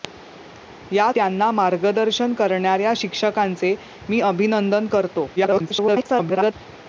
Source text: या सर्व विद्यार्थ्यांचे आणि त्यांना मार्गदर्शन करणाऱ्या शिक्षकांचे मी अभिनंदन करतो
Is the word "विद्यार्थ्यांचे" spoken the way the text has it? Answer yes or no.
no